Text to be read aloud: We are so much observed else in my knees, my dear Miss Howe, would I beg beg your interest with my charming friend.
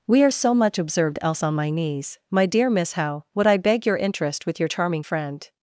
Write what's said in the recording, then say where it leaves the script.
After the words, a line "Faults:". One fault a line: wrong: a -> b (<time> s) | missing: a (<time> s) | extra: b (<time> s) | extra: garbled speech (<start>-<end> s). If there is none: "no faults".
We are so much observed else on my knees, my dear Miss Howe, would I beg your interest with your charming friend.
Faults:
wrong: in -> on (1.4 s)
missing: beg (3.8 s)
wrong: my -> your (4.6 s)